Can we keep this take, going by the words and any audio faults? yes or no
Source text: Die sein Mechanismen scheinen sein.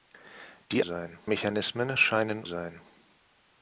yes